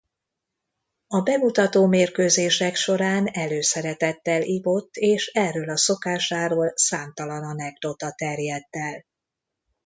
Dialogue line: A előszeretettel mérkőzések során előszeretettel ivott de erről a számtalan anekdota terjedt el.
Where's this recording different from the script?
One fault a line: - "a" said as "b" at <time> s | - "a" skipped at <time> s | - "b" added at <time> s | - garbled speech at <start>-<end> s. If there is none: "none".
- "előszeretettel" said as "bemutató" at 1.2 s
- "de" said as "és" at 5.0 s
- "szokásáról" added at 5.8 s